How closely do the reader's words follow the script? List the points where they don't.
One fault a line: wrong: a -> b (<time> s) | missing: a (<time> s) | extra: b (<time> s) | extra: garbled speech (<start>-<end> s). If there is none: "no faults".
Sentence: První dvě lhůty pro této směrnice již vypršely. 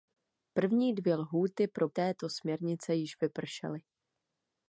no faults